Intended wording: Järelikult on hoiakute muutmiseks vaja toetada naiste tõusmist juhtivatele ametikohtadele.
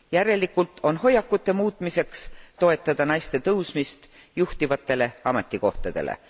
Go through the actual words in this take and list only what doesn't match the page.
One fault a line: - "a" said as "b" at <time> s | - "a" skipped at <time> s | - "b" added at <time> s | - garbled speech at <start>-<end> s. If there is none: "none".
- "vaja" skipped at 2.3 s